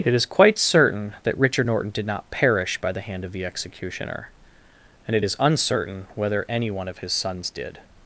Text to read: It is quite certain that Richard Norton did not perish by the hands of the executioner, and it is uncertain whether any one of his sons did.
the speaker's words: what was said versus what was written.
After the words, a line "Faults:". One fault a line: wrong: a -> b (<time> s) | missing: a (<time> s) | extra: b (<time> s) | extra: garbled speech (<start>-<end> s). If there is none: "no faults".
It is quite certain that Richard Norton did not perish by the hand of the executioner, and it is uncertain whether any one of his sons did.
Faults:
wrong: hands -> hand (3.0 s)